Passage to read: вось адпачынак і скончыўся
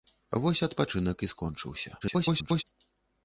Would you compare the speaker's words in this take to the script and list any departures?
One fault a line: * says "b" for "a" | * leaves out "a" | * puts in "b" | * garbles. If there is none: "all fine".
* garbles